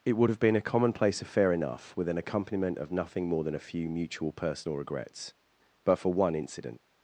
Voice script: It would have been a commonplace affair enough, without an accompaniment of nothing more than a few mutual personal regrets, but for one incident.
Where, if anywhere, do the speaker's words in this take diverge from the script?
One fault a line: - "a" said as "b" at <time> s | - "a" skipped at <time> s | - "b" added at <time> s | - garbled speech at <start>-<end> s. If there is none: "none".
- "without" said as "with" at 1.9 s